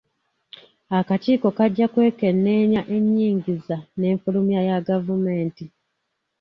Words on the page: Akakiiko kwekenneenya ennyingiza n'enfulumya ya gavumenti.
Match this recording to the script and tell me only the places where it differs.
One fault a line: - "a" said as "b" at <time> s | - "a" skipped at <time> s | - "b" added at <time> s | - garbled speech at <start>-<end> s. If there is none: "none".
- "kajja" added at 1.6 s